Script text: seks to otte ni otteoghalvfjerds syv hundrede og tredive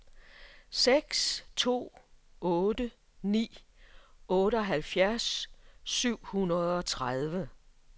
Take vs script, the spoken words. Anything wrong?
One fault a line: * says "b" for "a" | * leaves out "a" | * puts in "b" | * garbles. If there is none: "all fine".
all fine